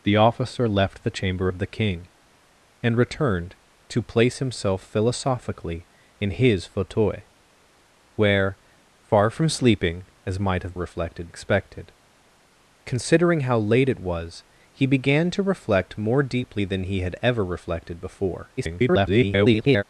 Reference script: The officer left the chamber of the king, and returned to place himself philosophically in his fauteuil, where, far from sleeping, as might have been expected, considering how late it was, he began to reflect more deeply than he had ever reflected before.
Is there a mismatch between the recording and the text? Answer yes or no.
yes